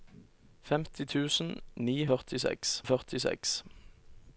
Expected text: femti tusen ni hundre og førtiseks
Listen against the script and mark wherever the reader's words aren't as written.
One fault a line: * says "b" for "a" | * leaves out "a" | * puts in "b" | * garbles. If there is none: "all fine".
* says "førtiseks" for "hundre"